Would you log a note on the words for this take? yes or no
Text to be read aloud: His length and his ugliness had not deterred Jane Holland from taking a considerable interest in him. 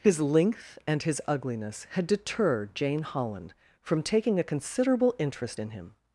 yes